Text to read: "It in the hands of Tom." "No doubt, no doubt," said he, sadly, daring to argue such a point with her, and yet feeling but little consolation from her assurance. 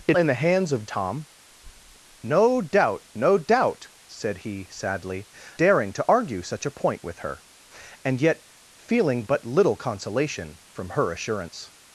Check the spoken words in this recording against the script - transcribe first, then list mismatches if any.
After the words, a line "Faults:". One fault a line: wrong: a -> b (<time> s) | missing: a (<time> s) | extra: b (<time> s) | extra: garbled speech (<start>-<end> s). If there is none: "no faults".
"It in the hands of Tom." "No doubt, no doubt," said he, sadly, daring to argue such a point with her, and yet feeling but little consolation from her assurance.
Faults:
no faults